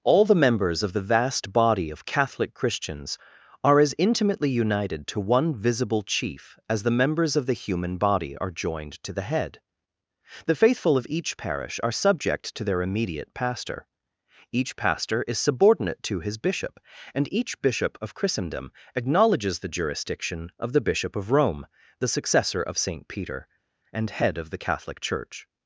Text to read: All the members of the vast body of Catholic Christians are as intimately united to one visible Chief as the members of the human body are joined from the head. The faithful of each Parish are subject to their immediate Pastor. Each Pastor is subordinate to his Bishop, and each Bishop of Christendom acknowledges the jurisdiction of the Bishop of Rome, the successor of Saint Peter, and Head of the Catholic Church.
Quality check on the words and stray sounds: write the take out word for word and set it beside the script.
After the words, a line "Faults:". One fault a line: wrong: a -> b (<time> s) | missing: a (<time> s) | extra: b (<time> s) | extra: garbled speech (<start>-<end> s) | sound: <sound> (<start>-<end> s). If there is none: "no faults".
All the members of the vast body of Catholic Christians are as intimately united to one visible Chief as the members of the human body are joined to the head. The faithful of each Parish are subject to their immediate Pastor. Each Pastor is subordinate to his Bishop, and each Bishop of Christendom acknowledges the jurisdiction of the Bishop of Rome, the successor of Saint Peter, and Head of the Catholic Church.
Faults:
wrong: from -> to (9.0 s)